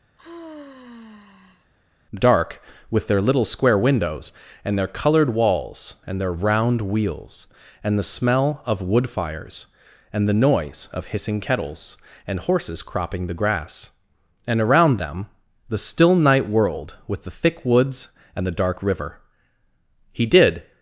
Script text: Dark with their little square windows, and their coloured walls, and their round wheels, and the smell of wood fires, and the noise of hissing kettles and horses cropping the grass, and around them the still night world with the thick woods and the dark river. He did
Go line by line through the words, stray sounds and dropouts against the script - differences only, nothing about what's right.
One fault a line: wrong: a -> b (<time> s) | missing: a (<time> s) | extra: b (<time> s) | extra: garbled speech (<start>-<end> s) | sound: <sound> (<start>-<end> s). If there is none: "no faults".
sound: sigh (0.2-1.7 s)